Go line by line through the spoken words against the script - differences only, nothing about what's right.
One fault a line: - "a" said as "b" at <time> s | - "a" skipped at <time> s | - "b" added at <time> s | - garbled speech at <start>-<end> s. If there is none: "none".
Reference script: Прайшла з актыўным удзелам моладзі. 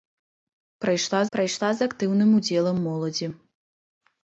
- "прайшла" added at 1.4 s